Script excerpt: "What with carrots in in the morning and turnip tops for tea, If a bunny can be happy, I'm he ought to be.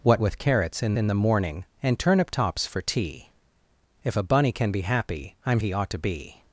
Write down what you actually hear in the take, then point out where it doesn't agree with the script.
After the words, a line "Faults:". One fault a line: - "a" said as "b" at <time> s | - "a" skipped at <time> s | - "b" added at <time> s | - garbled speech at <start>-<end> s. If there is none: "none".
"What with carrots in in the morning and turnip tops for tea, If a bunny can be happy, I'm he ought to be.
Faults:
none